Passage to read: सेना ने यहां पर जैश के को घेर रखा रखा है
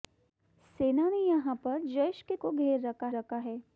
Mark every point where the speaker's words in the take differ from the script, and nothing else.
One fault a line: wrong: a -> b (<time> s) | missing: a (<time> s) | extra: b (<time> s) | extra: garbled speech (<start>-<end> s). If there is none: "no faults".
no faults